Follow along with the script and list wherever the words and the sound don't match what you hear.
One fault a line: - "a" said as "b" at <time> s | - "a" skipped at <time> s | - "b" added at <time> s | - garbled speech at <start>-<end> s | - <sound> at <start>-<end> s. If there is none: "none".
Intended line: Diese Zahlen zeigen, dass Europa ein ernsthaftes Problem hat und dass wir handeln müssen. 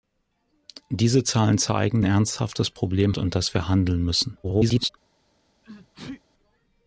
- "dass Europa ein" skipped at 2.0 s
- "hat" skipped at 3.2 s
- garbled speech at 4.4-4.9 s
- sneeze at 5.6-6.2 s